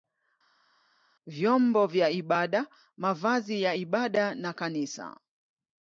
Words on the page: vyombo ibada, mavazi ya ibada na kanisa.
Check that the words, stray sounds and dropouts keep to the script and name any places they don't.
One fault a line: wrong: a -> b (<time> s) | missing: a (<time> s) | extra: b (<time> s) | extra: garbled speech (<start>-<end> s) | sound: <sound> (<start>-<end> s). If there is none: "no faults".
extra: vya (1.9 s)